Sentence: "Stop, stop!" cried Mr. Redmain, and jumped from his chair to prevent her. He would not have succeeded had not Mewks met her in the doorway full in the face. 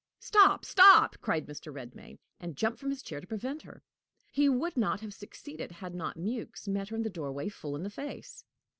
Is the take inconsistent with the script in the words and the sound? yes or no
no